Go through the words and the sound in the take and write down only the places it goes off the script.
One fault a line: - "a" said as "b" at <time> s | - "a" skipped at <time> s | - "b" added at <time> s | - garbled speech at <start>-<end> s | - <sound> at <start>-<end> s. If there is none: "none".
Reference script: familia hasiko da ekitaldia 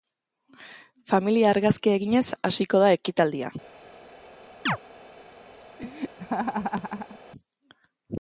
- "argazkia eginez" added at 1.5 s
- chirp at 4.7-4.8 s
- laugh at 5.8-7.2 s